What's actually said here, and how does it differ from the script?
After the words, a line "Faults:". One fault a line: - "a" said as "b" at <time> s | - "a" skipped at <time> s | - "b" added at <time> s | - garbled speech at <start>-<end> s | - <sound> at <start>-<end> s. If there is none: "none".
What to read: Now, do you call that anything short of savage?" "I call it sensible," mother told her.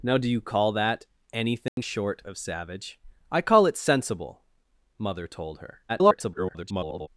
Now, do you call that anything short of savage?" "I call it sensible," mother told her. [garbled]
Faults:
- dropout at 1.7-1.8 s
- garbled speech at 5.9-7.1 s